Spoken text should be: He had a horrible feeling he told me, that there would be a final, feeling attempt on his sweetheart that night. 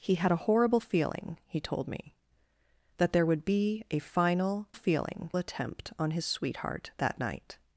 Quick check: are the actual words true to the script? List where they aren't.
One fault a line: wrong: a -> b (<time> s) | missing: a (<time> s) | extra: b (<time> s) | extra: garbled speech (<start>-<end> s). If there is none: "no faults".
no faults